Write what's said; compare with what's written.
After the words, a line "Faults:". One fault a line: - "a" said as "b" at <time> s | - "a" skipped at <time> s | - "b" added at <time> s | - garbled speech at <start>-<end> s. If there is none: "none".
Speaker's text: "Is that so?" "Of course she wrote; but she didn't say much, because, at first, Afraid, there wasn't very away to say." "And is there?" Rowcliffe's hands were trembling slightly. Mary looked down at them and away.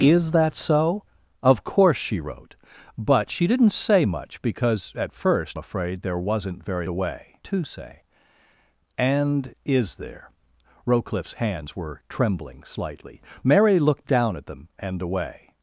"Is that so?" "Of course she wrote; but she didn't say much, because, at first, Afraid, there wasn't very away to say." "And is there?" Rowcliffe's hands were trembling slightly. Mary looked down at them and away.
Faults:
none